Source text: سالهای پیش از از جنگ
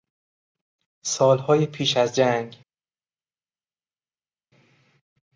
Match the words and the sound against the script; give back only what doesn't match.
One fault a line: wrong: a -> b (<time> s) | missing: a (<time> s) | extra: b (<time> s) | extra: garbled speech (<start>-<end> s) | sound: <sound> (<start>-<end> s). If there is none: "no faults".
missing: از (2.2 s)